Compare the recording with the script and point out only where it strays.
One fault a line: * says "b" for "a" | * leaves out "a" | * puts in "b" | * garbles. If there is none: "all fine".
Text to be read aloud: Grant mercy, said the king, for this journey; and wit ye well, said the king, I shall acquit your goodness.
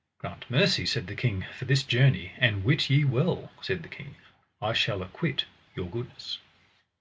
all fine